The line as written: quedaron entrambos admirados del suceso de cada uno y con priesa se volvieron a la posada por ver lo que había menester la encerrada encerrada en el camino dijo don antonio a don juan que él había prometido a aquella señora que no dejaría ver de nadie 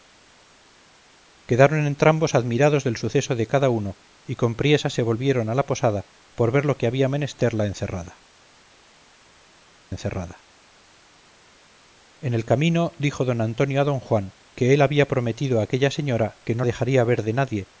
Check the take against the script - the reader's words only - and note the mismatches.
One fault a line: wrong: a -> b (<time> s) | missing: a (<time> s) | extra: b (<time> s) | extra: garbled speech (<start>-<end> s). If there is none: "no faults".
no faults